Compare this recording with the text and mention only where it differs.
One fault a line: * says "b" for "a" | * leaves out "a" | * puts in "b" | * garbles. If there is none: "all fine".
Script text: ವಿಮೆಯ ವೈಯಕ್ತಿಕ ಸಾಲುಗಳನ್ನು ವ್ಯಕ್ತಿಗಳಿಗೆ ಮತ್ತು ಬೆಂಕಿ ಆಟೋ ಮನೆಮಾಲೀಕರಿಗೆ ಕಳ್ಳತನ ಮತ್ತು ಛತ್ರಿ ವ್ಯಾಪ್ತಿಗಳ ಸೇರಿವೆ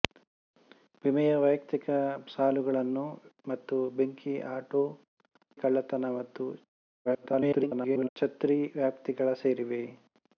* leaves out "ವ್ಯಕ್ತಿಗಳಿಗೆ"
* leaves out "ಮನೆಮಾಲೀಕರಿಗೆ"
* garbles